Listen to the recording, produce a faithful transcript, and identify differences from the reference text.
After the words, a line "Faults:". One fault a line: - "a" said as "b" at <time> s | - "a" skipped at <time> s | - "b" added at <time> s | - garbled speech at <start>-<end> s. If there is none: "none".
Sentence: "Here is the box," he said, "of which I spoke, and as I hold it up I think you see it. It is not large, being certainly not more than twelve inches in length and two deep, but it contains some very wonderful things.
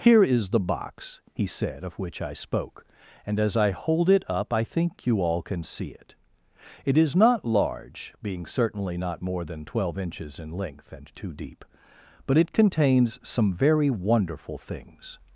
"Here is the box," he said, "of which I spoke, and as I hold it up I think you all can see it. It is not large, being certainly not more than twelve inches in length and two deep, but it contains some very wonderful things.
Faults:
- "all can" added at 5.2 s